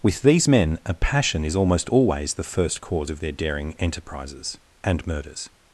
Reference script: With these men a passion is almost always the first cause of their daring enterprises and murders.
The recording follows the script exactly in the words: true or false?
true